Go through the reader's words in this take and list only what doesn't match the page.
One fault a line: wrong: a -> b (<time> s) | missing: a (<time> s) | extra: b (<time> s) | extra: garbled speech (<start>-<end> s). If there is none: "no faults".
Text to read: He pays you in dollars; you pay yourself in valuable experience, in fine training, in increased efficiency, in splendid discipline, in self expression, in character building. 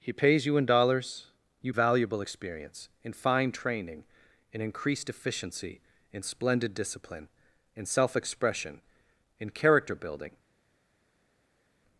missing: pay yourself in (1.8 s)